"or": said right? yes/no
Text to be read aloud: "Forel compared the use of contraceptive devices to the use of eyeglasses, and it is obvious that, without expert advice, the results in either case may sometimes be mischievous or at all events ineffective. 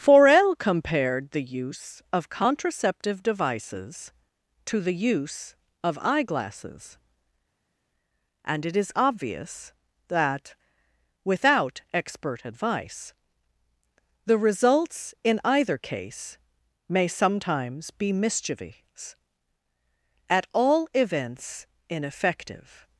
no